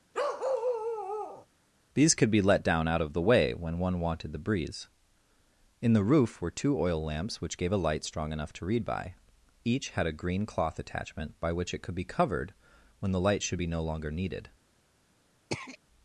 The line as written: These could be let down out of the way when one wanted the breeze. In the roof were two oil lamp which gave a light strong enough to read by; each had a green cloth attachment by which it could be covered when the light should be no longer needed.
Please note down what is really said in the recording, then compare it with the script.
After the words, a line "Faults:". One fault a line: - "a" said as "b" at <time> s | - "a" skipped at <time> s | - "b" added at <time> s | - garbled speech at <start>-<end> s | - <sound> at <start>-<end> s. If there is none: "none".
These could be let down out of the way when one wanted the breeze. In the roof were two oil lamps which gave a light strong enough to read by; each had a green cloth attachment by which it could be covered when the light should be no longer needed.
Faults:
- bark at 0.1-1.5 s
- "lamp" said as "lamps" at 7.0 s
- throat clearing at 15.5-15.8 s